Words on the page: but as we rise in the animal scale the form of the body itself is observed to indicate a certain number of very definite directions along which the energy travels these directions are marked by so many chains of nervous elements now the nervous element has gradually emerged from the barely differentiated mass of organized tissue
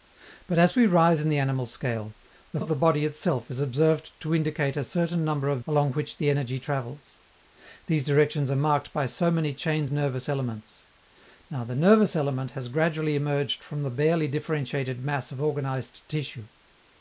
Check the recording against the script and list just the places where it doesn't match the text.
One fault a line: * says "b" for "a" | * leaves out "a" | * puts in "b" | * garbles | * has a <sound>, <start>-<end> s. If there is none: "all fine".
* leaves out "form"
* leaves out "very definite directions"
* leaves out "of"